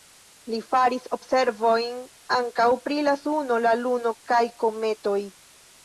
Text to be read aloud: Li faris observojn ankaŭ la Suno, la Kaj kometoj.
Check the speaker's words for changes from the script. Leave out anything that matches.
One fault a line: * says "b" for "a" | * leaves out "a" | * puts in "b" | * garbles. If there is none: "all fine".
* puts in "pri"
* puts in "Luno"